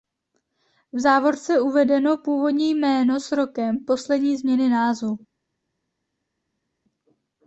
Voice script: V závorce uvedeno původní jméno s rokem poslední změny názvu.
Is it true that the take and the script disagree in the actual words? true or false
false